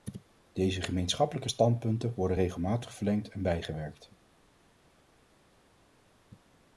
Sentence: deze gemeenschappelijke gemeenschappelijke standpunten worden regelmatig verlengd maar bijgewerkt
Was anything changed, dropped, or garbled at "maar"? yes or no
yes